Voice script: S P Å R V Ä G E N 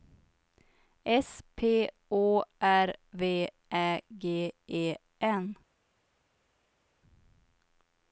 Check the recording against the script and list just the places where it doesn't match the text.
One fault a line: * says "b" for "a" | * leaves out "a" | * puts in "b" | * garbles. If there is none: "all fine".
all fine